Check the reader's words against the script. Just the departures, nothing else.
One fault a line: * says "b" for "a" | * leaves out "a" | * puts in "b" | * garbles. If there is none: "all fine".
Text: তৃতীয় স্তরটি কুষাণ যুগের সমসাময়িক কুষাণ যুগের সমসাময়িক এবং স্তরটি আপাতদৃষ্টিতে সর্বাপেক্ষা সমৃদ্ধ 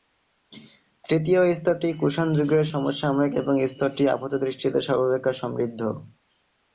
* leaves out "কুষাণ যুগের সমসাময়িক"